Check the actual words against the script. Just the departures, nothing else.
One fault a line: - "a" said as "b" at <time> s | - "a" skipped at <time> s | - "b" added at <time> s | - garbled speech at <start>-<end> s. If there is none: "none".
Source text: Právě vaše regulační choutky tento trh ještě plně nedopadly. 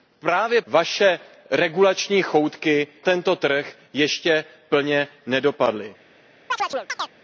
none